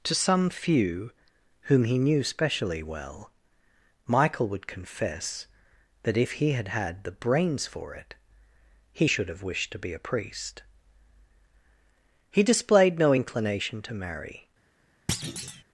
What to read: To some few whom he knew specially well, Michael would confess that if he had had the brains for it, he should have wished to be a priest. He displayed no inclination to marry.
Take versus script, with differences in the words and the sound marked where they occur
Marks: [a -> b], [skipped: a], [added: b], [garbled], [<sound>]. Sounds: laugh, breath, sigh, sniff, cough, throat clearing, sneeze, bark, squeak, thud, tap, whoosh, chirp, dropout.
To some few whom he knew specially well, Michael would confess that if he had had the brains for it, he should have wished to be a priest. He displayed no inclination to marry. [thud]